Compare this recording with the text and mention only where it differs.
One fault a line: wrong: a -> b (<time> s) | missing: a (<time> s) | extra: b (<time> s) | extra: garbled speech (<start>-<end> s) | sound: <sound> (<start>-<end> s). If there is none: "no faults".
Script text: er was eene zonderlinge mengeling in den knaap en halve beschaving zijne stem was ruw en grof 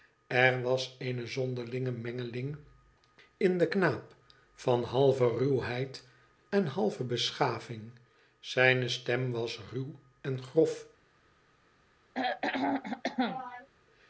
extra: van halve ruwheid (4.5 s)
sound: throat clearing (12.1-13.7 s)